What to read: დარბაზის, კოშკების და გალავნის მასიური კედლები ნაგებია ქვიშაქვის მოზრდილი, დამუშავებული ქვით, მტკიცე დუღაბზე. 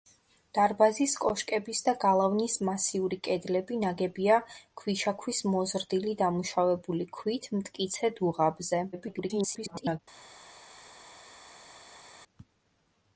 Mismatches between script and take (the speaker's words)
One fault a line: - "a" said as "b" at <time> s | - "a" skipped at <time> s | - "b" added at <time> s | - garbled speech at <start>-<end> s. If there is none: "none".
- garbled speech at 8.9-10.0 s